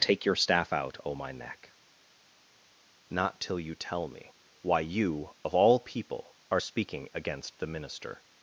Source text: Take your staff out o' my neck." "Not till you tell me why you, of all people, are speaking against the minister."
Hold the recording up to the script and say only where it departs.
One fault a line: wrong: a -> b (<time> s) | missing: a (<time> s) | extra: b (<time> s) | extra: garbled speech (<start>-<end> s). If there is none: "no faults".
no faults